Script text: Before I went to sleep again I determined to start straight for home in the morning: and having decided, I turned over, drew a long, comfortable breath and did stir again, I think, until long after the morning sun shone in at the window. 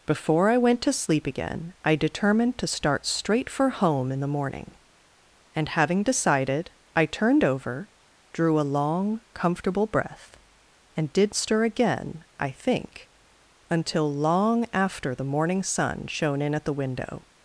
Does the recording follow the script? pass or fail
pass